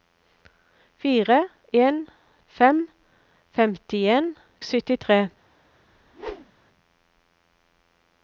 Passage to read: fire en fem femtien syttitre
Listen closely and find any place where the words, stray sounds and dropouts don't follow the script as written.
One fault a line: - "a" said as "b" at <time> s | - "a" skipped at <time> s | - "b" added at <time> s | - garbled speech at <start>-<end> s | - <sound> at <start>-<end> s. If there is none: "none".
- whoosh at 5.9-6.6 s